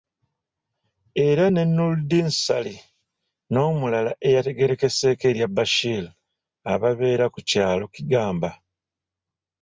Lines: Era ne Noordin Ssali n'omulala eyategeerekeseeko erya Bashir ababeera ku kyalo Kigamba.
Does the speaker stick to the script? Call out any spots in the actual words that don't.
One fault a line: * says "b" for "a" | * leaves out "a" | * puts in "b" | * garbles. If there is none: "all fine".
all fine